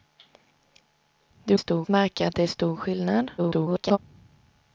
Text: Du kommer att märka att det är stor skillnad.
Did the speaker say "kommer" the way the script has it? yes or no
no